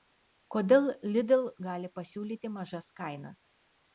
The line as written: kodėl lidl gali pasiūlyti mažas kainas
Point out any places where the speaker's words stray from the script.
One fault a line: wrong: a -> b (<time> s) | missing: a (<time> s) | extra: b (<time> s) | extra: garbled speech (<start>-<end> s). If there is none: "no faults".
no faults